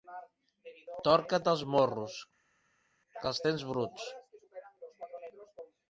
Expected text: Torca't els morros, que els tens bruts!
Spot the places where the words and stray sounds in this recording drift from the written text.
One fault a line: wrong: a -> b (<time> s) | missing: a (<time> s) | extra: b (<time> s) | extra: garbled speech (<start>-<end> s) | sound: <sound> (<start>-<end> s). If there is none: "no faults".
no faults